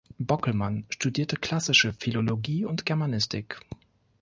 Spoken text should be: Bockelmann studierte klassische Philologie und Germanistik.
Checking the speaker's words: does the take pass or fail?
pass